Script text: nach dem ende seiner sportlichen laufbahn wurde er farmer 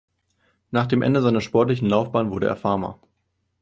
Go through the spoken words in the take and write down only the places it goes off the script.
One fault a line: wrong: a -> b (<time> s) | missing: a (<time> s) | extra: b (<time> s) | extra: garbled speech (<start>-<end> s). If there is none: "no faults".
no faults